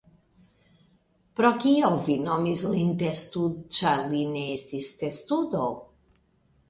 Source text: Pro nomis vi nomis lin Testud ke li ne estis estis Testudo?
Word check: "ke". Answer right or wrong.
wrong